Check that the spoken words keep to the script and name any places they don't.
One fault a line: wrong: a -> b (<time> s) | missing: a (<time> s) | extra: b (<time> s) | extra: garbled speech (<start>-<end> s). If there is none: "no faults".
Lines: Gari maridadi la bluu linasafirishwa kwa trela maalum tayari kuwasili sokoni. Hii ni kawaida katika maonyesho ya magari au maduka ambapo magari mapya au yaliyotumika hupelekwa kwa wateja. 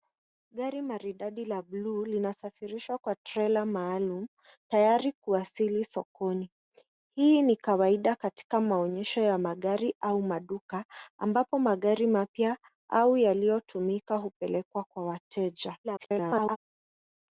extra: garbled speech (15.8-16.6 s)